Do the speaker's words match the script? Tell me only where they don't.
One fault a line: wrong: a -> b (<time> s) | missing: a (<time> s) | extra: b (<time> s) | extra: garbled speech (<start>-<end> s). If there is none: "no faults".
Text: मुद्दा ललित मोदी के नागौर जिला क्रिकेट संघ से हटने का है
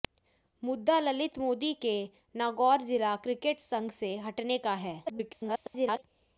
extra: garbled speech (5.1-6.0 s)